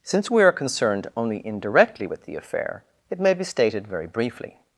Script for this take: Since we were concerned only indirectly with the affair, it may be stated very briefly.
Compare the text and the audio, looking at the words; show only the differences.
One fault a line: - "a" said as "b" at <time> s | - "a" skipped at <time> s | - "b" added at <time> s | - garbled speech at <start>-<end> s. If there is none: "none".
- "were" said as "are" at 0.4 s